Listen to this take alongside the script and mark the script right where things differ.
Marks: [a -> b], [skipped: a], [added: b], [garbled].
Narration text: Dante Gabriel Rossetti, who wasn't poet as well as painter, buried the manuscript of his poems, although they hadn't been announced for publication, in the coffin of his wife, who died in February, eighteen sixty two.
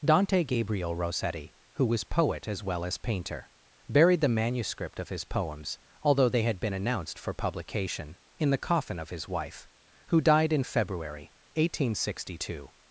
Dante Gabriel Rossetti, who [wasn't -> was] poet as well as painter, buried the manuscript of his poems, although they [hadn't -> had] been announced for publication, in the coffin of his wife, who died in February, eighteen sixty two.